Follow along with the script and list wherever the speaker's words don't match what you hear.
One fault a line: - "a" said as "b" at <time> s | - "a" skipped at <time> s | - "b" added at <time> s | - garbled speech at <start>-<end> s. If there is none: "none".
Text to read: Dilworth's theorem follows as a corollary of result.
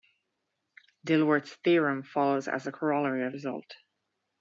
none